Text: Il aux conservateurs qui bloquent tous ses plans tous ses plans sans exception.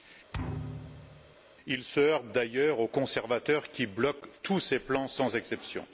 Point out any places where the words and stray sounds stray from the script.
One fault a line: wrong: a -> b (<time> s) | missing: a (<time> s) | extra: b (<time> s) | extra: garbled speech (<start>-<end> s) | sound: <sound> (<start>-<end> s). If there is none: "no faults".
sound: thud (0.3-1.4 s)
extra: se heurte d'ailleurs (1.8 s)
missing: tous ses plans (5.1 s)